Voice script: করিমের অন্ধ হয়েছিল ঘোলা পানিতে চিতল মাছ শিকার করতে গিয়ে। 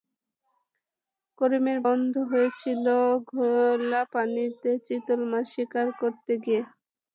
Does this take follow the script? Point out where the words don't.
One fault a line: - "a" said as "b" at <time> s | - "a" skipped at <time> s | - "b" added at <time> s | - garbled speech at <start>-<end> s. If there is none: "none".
none